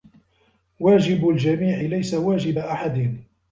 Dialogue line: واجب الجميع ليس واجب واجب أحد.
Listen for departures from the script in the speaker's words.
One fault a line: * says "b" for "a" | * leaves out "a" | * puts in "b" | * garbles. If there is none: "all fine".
* leaves out "واجب"